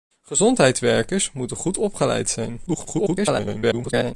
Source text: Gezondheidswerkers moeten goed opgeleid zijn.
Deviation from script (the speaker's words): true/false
true